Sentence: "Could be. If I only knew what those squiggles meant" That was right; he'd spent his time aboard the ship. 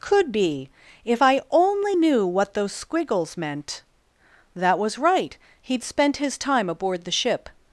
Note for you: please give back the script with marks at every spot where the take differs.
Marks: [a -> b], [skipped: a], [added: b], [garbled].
"Could be. If I only knew what those squiggles meant" That was right; he'd spent his time aboard the ship.